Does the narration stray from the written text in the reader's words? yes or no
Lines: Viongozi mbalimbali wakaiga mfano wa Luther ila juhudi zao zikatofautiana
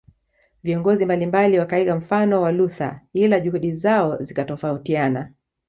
no